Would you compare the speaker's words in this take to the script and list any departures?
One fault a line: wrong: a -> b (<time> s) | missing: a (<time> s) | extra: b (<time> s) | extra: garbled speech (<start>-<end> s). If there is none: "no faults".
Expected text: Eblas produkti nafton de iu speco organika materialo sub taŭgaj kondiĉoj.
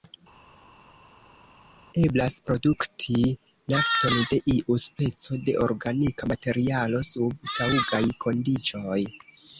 extra: de (5.5 s)